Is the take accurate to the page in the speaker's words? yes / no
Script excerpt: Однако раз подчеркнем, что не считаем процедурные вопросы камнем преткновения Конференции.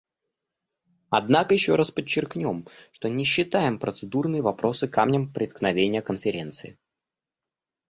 no